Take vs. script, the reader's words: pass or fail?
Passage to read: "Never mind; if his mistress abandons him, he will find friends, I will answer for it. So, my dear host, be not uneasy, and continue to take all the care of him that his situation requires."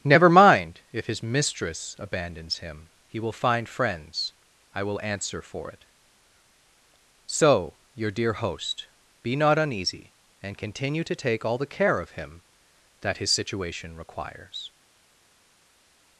fail